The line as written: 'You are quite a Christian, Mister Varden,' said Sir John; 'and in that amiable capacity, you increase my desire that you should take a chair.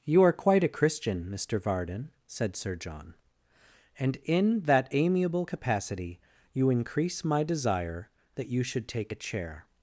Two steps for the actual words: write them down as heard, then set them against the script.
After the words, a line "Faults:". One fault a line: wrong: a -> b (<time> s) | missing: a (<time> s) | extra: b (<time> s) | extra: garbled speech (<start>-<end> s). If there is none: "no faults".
'You are quite a Christian, Mister Varden,' said Sir John; 'and in that amiable capacity, you increase my desire that you should take a chair.
Faults:
no faults